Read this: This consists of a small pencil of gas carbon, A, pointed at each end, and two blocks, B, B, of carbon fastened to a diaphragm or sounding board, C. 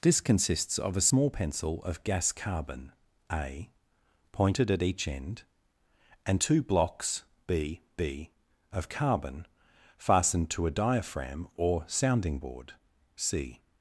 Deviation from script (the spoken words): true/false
false